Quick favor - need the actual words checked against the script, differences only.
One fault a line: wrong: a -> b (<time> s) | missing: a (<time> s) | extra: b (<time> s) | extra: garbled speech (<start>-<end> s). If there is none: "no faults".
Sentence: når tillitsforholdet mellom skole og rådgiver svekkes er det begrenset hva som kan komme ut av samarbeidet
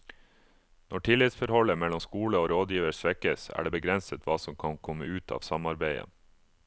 no faults